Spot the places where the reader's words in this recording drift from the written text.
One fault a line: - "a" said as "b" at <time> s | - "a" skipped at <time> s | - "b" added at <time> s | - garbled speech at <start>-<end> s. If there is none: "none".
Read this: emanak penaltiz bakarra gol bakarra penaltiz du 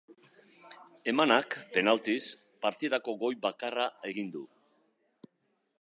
- "bakarra" said as "partidako" at 2.6 s
- "penaltiz" said as "egin" at 4.1 s